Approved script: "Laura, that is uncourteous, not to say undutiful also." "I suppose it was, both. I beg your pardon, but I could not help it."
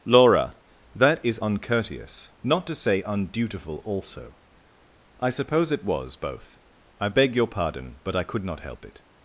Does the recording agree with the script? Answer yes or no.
yes